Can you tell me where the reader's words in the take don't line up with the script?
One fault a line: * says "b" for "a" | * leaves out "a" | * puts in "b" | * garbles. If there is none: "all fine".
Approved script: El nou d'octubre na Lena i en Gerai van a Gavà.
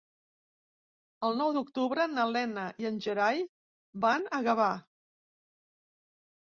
all fine